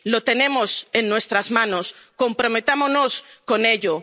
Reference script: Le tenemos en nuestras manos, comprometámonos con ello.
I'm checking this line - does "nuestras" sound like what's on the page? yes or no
yes